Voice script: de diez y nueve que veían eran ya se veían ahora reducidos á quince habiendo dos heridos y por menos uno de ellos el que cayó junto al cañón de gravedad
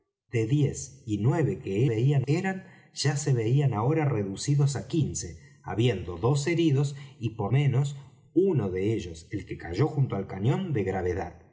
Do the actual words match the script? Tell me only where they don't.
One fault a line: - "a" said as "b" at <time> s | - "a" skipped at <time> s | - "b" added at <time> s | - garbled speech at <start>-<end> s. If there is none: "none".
none